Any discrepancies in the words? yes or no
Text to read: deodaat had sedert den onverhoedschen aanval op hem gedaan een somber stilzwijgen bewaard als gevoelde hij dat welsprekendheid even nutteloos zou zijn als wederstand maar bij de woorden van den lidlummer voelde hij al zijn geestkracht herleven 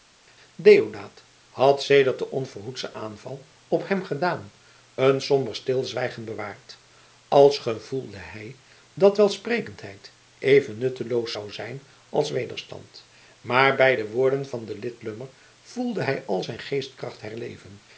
no